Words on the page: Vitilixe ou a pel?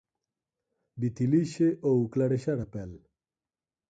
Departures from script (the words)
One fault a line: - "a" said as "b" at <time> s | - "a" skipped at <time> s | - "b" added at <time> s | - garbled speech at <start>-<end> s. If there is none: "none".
- "clarexar" added at 2.1 s